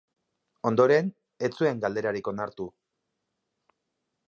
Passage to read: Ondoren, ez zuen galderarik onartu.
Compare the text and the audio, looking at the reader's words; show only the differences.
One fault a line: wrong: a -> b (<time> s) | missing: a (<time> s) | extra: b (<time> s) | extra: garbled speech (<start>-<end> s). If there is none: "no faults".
no faults